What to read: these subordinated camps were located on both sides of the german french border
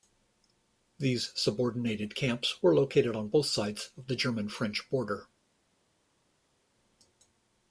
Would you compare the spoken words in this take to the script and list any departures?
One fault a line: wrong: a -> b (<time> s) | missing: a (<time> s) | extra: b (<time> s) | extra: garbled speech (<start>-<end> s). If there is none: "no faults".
no faults